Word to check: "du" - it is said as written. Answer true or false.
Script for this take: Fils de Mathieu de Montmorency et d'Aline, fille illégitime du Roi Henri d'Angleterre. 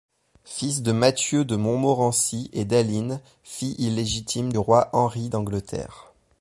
false